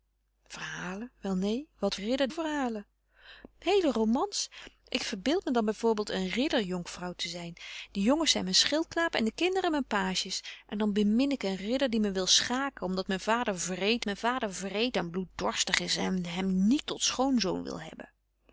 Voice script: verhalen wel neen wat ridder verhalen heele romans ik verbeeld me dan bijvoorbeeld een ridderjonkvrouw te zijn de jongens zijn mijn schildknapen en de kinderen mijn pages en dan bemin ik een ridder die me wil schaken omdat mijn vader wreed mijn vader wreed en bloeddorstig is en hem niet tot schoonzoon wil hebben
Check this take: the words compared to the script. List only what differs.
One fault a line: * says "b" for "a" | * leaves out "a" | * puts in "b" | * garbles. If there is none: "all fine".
all fine